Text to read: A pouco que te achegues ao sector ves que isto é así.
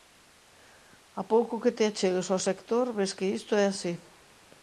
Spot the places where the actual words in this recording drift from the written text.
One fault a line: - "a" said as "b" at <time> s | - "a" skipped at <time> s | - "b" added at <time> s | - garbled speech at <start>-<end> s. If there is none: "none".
none